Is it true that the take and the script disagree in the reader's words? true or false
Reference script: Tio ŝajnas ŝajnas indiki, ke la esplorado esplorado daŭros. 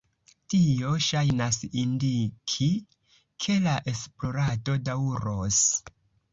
true